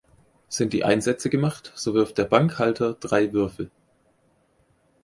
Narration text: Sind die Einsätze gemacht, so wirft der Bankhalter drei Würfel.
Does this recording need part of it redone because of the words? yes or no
no